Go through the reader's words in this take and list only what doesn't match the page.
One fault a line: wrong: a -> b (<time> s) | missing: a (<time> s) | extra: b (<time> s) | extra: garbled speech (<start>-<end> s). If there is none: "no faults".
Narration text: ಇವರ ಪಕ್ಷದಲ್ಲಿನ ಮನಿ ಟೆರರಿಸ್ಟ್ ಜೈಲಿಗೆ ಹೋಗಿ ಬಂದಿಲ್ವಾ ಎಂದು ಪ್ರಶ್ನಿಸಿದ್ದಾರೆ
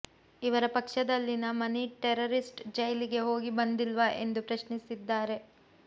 no faults